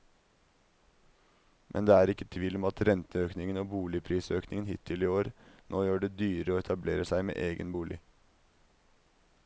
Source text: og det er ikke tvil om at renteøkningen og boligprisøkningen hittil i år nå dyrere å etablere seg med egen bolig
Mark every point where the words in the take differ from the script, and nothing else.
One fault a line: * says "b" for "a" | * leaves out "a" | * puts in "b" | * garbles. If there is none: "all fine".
* says "men" for "og"
* puts in "gjør det"